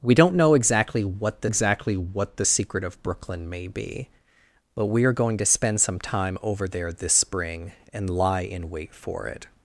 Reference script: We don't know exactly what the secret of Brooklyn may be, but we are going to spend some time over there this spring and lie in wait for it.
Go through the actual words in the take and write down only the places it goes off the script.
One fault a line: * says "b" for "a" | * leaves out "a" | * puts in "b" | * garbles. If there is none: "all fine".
* puts in "exactly what the"